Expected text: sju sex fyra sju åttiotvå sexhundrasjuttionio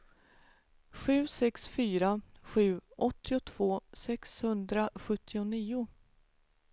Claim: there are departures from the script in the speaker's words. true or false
false